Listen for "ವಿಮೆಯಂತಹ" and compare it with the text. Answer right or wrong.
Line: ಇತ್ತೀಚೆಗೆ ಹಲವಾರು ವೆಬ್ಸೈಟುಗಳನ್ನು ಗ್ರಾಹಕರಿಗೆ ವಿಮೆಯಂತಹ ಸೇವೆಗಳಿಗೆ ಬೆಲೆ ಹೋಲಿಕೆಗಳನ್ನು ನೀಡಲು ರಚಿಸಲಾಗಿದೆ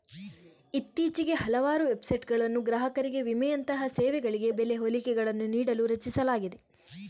right